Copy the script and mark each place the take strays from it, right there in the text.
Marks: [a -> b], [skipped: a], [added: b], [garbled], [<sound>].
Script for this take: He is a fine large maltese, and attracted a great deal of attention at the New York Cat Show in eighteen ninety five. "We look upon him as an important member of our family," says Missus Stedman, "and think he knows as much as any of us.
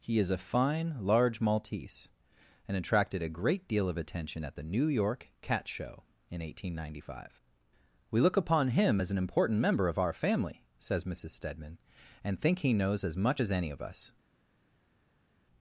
He is a fine large maltese, and attracted a great deal of attention at the New York Cat Show in eighteen ninety five. "We look upon him as an important member of our family," says Missus Stedman, "and think he knows as much as any of us.